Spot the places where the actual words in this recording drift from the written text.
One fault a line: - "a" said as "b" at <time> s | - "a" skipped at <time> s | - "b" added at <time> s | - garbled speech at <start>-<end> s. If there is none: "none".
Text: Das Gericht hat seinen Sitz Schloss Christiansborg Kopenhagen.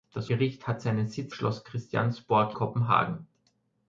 none